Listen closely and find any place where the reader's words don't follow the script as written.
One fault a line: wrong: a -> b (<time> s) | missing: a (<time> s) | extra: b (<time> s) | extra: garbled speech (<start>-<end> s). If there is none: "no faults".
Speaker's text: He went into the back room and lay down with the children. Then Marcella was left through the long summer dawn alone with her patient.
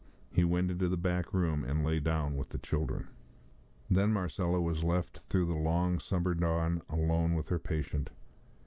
no faults